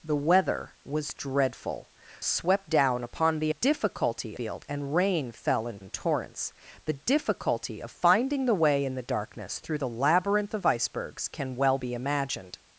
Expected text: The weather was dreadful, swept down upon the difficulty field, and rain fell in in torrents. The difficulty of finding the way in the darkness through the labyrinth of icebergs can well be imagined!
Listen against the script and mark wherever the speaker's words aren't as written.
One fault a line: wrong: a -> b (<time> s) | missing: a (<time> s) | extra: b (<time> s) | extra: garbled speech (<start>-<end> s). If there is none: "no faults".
no faults